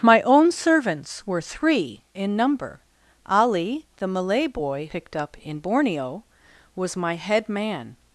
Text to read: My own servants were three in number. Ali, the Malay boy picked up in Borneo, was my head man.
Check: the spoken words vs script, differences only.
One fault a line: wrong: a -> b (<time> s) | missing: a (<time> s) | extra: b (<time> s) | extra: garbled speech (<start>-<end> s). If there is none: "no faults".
no faults